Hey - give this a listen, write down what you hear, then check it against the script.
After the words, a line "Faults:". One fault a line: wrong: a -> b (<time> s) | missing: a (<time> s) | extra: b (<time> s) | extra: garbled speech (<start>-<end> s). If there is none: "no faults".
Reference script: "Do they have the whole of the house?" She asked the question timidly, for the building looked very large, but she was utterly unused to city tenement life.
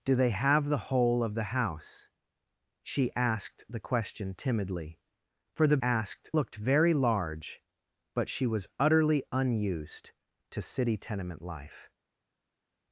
"Do they have the whole of the house?" She asked the question timidly, for the asked looked very large, but she was utterly unused to city tenement life.
Faults:
wrong: building -> asked (5.8 s)